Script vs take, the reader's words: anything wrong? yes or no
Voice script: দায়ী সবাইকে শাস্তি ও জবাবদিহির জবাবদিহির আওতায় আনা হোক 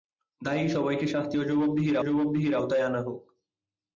no